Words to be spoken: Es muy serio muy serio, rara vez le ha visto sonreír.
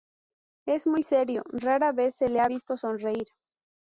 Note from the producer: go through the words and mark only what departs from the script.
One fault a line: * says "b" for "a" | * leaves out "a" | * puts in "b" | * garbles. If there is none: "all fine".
* leaves out "muy serio"
* puts in "se"